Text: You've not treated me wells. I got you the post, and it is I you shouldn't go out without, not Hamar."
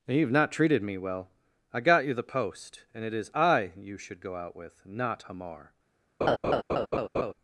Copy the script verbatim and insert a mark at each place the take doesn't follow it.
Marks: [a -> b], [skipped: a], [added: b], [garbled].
You've not treated me [wells. -> well] I got you the post, and it is I you [shouldn't -> should] go out [without, -> with] not Hamar."